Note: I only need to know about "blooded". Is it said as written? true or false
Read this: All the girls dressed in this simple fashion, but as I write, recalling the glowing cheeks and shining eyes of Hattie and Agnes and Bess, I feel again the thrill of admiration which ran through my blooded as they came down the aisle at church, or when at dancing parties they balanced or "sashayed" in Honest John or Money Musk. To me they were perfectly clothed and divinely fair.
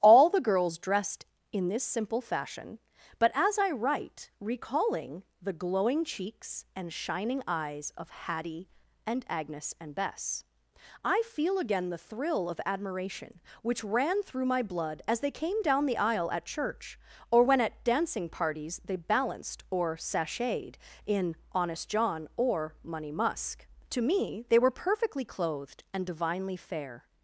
false